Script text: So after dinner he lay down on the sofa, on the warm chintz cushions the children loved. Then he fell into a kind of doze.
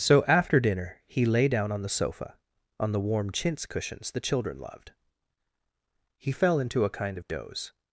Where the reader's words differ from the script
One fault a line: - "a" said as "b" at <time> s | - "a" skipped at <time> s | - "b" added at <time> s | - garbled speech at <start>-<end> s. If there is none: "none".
- "Then" skipped at 4.9 s